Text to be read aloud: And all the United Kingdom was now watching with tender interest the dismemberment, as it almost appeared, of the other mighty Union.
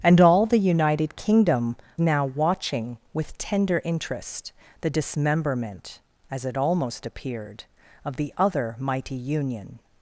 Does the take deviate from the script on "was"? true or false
true